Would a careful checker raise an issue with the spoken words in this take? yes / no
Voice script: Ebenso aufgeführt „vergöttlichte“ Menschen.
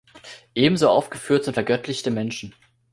yes